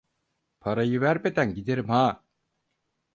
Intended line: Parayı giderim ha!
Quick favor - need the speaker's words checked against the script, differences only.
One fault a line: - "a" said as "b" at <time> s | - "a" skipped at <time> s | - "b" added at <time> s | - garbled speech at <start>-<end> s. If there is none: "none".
- "vermeden" added at 1.0 s